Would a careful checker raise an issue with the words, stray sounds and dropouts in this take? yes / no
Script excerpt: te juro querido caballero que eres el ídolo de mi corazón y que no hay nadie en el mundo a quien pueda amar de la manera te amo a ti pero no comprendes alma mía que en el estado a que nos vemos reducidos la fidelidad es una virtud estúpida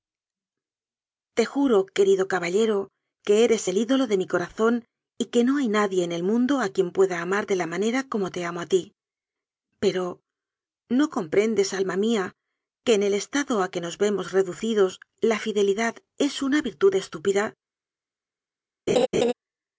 yes